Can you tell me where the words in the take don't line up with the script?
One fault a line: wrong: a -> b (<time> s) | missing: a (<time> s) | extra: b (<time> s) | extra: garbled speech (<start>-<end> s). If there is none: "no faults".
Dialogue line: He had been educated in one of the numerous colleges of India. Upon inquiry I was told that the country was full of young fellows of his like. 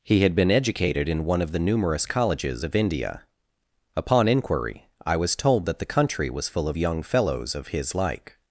no faults